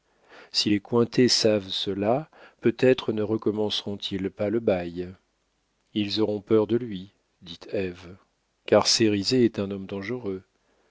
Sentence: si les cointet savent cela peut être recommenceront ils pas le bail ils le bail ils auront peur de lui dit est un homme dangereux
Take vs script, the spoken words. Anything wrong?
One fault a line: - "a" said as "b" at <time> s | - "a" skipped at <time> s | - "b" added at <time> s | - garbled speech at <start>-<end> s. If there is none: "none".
- "ne" added at 3.1 s
- "le bail ils" skipped at 6.2 s
- "ève car cérizet" added at 7.7 s